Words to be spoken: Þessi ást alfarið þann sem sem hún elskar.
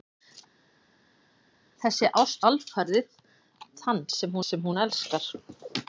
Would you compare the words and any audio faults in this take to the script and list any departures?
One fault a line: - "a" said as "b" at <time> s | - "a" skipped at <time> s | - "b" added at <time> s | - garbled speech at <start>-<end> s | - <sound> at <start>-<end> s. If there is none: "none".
none